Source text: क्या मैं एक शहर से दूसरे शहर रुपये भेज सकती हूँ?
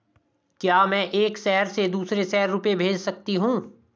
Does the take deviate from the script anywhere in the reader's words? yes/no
no